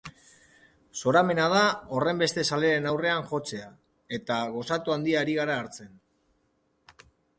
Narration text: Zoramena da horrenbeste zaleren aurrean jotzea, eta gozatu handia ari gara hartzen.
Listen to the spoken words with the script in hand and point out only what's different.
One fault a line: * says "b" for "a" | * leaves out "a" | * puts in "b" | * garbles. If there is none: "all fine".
all fine